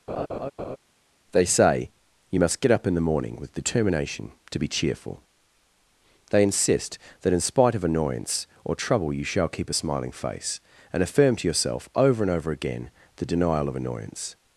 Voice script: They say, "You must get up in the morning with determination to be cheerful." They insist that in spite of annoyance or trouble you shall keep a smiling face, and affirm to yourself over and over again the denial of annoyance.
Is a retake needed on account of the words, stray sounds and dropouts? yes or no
yes